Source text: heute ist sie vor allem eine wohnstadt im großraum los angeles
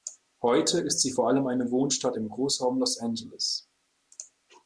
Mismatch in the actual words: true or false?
false